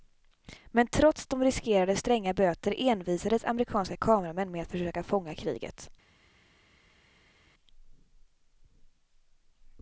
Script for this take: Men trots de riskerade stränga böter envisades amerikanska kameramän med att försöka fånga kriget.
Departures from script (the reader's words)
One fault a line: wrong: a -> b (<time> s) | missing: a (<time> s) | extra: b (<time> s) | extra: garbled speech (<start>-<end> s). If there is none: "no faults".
no faults